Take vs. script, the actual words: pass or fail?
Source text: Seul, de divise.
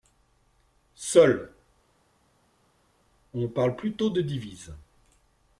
fail